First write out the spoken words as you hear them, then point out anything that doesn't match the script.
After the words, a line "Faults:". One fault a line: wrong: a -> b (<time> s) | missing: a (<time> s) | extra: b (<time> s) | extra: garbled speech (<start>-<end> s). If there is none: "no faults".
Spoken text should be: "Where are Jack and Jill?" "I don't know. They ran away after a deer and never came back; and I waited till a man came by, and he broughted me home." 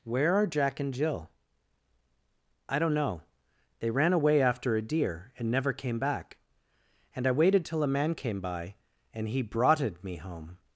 "Where are Jack and Jill?" "I don't know. They ran away after a deer and never came back; and I waited till a man came by, and he broughted me home."
Faults:
no faults